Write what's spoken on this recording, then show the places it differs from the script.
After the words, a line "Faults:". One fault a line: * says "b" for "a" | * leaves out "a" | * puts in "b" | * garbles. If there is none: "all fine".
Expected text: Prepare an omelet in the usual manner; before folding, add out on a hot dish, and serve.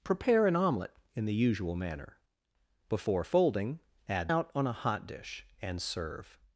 Prepare an omelet in the usual manner; before folding, add out on a hot dish, and serve.
Faults:
all fine